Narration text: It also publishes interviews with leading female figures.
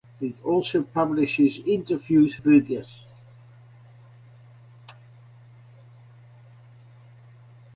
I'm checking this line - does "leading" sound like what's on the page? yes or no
no